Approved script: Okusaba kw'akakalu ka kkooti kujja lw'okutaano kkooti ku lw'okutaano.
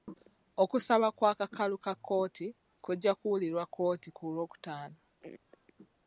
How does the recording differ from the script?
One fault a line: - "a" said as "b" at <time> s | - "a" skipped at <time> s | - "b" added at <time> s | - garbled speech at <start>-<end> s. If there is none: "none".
- "lw'okutaano" said as "kuwulirwa" at 3.2 s